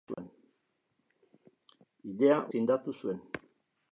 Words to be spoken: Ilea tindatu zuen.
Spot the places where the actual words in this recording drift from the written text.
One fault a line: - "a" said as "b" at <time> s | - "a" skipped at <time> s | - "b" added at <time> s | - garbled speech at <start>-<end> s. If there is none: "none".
none